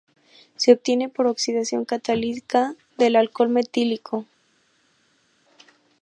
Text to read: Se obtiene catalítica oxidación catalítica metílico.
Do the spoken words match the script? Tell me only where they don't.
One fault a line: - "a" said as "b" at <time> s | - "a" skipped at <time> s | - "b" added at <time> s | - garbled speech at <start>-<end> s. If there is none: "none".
- "catalítica" said as "por" at 1.1 s
- "del alcohol" added at 3.0 s